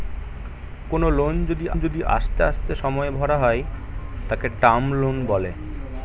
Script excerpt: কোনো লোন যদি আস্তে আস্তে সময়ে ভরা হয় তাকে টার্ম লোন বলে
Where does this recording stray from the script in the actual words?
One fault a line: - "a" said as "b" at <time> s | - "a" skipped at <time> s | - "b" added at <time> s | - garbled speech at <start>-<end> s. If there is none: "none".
- "যদি" added at 1.8 s